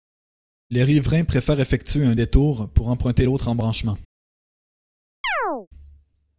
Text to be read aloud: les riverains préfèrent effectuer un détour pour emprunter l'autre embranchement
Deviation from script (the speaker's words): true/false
false